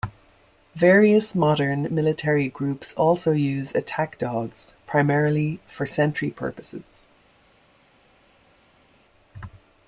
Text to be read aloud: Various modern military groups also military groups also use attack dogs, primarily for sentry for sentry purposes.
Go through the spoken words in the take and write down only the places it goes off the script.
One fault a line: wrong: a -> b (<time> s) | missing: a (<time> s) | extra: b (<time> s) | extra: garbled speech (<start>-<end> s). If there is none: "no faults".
missing: military groups also (3.3 s)
missing: for sentry (6.3 s)